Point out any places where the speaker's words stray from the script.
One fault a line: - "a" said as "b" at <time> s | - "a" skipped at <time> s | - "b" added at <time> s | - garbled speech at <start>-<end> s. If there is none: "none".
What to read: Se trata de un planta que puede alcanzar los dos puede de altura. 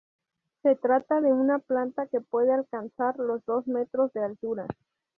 - "un" said as "una" at 1.3 s
- "puede" said as "metros" at 3.7 s